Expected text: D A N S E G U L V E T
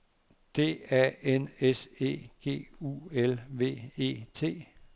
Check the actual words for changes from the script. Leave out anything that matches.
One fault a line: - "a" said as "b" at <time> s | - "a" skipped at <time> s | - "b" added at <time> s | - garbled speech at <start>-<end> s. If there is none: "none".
none